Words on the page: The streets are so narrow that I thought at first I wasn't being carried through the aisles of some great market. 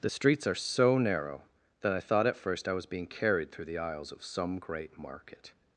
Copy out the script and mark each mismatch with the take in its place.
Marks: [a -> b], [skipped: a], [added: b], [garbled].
The streets are so narrow that I thought at first I [wasn't -> was] being carried through the aisles of some great market.